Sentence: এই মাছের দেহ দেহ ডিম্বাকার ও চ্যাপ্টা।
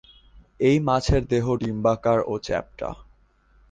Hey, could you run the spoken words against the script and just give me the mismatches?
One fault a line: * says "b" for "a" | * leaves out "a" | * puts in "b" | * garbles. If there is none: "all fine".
* leaves out "দেহ"